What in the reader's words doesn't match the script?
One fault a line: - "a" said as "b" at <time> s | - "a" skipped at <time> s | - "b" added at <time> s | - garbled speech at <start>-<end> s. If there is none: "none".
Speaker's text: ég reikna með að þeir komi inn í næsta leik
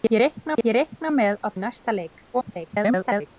- "ég reikna" added at 0.6 s
- "þeir komi inn" skipped at 1.5 s
- garbled speech at 2.3-3.3 s